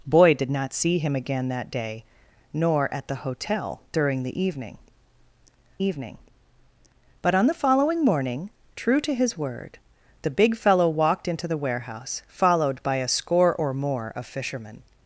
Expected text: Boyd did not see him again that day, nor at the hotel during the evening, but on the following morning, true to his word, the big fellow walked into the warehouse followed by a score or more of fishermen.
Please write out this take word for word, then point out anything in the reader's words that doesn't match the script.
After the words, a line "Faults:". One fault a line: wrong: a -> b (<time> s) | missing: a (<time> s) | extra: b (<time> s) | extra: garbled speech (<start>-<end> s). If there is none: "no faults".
Boyd did not see him again that day, nor at the hotel during the evening evening, but on the following morning, true to his word, the big fellow walked into the warehouse followed by a score or more of fishermen.
Faults:
extra: evening (5.8 s)